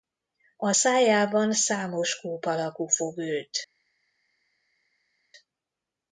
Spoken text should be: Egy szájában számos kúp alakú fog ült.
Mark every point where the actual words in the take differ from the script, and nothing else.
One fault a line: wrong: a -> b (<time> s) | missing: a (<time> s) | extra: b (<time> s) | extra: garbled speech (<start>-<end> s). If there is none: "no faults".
wrong: Egy -> A (0.6 s)